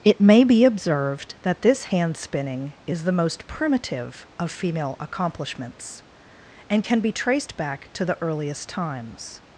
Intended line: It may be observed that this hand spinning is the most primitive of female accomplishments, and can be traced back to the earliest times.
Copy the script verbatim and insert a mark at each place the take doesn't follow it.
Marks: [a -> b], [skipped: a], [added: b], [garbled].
It may be observed that this hand spinning is the most primitive of female accomplishments, and can be traced back to the earliest times.